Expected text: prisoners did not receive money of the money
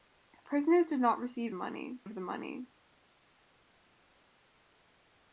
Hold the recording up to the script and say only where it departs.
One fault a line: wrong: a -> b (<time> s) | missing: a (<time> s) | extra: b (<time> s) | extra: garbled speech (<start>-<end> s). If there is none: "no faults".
no faults